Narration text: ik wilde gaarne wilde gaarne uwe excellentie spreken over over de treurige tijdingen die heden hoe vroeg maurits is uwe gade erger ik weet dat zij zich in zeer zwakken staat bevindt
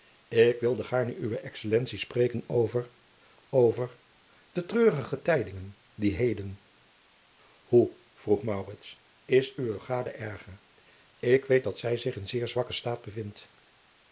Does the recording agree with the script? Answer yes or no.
no